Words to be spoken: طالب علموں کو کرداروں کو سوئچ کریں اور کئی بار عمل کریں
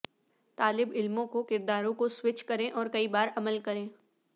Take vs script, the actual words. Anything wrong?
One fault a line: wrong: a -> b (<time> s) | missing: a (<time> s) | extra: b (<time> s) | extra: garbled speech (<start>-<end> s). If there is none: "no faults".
no faults